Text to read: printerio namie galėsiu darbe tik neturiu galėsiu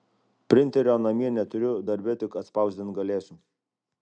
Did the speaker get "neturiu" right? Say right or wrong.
wrong